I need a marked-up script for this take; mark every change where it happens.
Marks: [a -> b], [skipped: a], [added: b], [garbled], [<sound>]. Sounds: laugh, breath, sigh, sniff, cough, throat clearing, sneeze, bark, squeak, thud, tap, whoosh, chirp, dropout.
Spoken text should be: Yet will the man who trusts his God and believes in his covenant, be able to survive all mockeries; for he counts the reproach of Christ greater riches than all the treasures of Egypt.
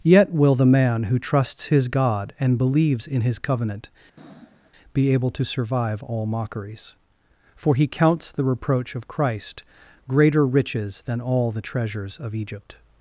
Yet will the man who trusts his God and believes in his covenant, [sniff] be able to survive all mockeries; for he counts the reproach of Christ greater riches than all the treasures of Egypt.